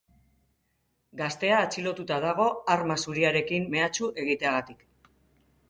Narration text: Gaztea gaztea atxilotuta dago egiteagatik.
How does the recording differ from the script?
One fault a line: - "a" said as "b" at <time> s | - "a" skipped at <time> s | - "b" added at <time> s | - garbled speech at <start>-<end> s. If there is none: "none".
- "gaztea" skipped at 1.6 s
- "arma zuriarekin mehatxu" added at 2.8 s